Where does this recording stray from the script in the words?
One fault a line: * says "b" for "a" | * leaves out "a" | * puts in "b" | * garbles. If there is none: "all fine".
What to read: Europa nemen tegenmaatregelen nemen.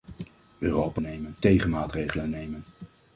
all fine